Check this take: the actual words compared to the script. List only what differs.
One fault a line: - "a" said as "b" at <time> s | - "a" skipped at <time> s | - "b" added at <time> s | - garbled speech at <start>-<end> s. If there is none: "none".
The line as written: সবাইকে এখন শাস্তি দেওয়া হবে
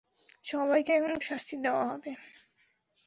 none